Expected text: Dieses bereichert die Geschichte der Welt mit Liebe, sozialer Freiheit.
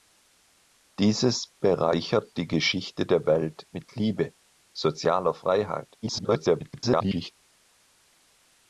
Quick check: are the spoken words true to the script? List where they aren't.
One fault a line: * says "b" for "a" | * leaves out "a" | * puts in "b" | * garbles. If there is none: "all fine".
* garbles